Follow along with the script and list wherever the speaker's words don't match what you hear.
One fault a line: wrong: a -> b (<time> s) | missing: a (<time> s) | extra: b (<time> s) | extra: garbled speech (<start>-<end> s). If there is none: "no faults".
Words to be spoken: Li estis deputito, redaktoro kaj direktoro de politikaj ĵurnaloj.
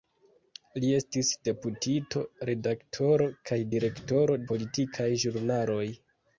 missing: de (4.4 s)